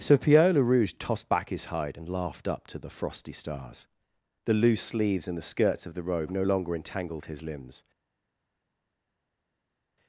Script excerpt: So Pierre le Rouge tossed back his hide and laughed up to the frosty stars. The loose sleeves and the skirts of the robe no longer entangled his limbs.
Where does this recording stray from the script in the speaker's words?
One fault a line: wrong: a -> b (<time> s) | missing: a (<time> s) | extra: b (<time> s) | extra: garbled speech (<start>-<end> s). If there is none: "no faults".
no faults